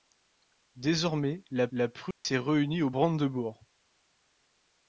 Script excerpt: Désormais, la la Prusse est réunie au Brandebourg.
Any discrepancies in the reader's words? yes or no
no